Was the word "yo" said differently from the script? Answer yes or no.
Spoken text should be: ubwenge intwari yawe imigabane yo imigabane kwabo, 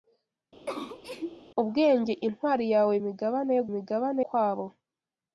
no